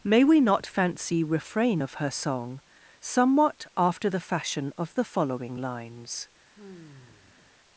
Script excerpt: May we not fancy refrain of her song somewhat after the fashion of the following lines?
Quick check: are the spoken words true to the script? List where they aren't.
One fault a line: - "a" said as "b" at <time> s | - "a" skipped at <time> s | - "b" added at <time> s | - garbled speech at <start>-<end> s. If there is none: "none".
none